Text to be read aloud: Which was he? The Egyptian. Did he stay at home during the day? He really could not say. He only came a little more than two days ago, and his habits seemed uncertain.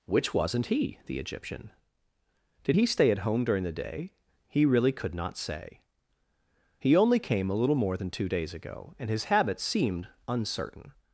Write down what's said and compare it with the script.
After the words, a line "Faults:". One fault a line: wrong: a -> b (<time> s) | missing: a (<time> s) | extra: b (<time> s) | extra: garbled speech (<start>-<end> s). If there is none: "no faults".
Which wasn't he? The Egyptian. Did he stay at home during the day? He really could not say. He only came a little more than two days ago, and his habits seemed uncertain.
Faults:
wrong: was -> wasn't (0.3 s)